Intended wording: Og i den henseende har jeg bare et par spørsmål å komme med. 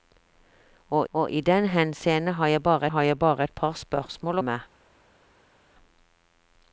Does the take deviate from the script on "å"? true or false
true